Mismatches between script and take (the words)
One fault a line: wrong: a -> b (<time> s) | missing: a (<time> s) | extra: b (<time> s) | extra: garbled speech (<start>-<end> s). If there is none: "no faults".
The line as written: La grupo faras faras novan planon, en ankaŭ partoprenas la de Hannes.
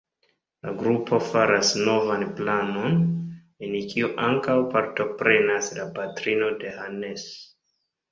missing: faras (1.7 s)
extra: kiu (3.9 s)
extra: patrino (6.0 s)